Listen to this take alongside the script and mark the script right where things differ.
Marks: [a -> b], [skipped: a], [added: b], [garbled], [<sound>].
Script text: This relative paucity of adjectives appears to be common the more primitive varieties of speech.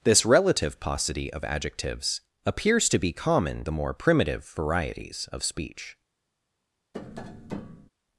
This relative paucity of adjectives appears to be common the more primitive varieties of speech. [tap]